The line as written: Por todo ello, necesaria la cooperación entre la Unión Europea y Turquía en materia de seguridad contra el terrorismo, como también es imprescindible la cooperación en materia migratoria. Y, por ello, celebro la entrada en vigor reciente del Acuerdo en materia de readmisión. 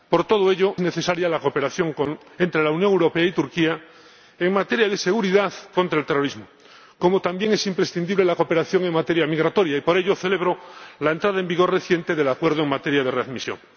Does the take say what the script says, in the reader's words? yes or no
yes